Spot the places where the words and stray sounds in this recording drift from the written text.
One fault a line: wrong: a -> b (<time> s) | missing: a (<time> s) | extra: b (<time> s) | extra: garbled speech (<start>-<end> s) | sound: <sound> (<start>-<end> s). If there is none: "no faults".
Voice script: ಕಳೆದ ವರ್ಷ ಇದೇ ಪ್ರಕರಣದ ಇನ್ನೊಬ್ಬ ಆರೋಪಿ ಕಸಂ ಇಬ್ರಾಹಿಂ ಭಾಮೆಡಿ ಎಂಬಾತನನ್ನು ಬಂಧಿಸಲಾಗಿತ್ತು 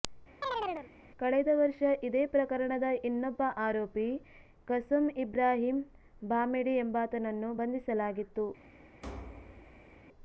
sound: chirp (0.4-0.9 s)
sound: thud (9.0-10.0 s)